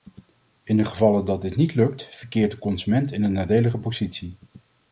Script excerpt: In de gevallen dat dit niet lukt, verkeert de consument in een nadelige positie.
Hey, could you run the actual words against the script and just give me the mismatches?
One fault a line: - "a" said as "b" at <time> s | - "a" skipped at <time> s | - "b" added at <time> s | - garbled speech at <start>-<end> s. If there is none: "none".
none